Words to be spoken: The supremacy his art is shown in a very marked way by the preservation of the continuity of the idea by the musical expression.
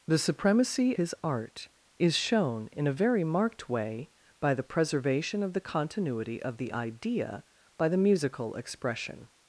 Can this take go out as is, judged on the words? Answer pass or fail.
pass